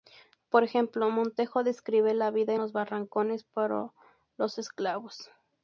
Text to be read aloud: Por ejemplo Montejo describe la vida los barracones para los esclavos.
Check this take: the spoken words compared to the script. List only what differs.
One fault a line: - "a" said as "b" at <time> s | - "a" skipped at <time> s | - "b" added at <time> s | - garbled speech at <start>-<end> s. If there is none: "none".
none